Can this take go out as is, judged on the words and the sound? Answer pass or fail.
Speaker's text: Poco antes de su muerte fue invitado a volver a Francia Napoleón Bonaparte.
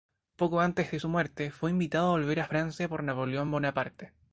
fail